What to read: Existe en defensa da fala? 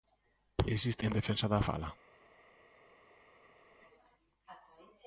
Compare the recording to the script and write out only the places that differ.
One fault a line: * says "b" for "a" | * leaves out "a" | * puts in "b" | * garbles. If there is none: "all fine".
all fine